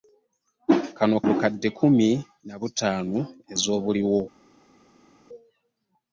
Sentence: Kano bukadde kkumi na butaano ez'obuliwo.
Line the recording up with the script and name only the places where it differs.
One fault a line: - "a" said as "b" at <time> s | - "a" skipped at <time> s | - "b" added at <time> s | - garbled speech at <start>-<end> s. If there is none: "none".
none